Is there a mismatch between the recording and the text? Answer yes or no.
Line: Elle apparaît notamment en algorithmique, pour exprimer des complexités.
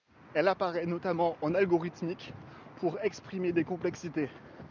no